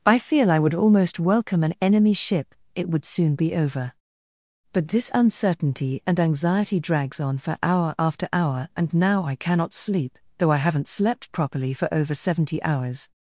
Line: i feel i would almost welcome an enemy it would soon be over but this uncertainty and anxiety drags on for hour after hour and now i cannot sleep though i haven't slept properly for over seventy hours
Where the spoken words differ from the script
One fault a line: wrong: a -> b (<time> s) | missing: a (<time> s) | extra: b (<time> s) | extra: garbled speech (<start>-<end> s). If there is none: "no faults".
extra: ship (2.1 s)